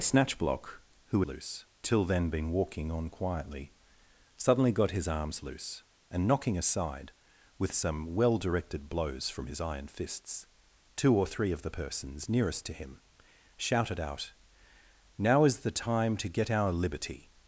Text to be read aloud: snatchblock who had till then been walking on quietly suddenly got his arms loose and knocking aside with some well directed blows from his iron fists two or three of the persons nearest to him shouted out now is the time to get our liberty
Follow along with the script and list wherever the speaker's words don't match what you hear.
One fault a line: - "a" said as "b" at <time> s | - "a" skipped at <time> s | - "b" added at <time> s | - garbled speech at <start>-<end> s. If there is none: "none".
- "had" said as "loose" at 1.2 s